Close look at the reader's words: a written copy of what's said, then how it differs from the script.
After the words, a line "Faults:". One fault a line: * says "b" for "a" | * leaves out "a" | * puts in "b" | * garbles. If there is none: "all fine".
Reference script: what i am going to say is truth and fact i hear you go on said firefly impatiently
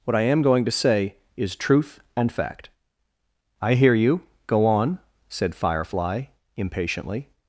what i am going to say is truth and fact i hear you go on said firefly impatiently
Faults:
all fine